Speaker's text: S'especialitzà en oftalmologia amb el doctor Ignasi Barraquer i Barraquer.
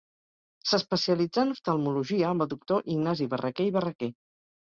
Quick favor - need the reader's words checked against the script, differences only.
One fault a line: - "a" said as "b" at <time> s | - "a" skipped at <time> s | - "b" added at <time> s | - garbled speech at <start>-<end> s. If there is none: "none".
none